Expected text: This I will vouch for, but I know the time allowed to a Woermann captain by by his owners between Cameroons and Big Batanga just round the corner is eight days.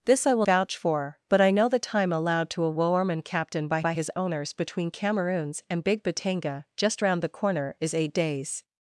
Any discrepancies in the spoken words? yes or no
no